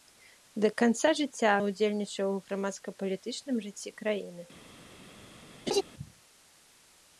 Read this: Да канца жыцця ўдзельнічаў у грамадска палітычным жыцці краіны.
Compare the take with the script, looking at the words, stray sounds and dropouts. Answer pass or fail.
fail